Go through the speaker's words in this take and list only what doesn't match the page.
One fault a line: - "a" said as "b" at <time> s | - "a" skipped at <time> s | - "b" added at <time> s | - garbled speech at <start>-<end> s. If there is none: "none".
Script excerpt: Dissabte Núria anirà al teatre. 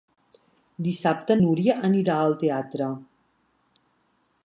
none